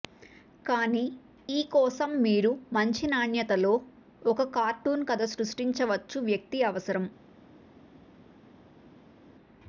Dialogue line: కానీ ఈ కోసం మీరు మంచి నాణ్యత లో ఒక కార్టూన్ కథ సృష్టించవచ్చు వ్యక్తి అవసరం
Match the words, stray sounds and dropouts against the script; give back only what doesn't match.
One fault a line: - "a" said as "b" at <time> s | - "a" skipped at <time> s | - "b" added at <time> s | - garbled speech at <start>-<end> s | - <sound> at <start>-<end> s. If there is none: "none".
none